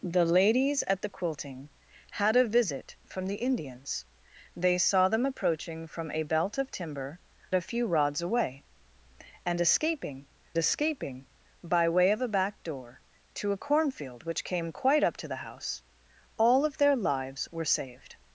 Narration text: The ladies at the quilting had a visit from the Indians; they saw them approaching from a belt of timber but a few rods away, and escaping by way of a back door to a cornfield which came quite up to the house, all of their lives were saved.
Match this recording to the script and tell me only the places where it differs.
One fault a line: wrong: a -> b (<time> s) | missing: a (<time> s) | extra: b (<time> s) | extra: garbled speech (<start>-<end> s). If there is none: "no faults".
missing: but (7.2 s)
extra: escaping (10.6 s)